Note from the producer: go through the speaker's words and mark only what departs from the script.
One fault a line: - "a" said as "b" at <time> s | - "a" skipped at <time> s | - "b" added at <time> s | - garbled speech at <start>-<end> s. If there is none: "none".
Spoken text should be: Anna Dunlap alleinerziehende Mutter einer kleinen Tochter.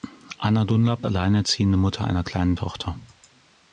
none